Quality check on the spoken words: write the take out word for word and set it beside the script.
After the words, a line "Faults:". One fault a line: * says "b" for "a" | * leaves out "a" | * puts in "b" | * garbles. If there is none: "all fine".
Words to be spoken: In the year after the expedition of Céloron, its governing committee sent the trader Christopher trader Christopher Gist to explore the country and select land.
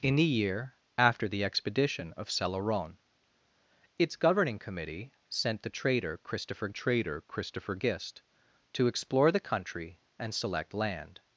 In the year after the expedition of Céloron, its governing committee sent the trader Christopher trader Christopher Gist to explore the country and select land.
Faults:
all fine